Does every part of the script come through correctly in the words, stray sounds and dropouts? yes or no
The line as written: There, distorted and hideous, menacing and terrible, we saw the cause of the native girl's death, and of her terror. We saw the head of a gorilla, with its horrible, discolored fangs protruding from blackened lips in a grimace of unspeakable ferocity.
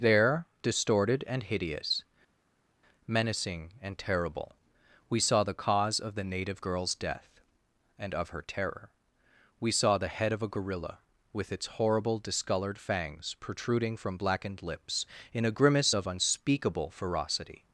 yes